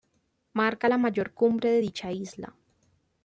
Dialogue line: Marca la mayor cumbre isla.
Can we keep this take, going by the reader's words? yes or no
no